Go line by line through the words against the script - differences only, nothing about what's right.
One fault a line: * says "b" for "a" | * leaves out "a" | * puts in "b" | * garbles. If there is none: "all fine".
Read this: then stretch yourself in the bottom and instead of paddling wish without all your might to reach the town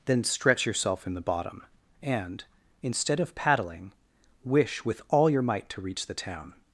* says "with" for "without"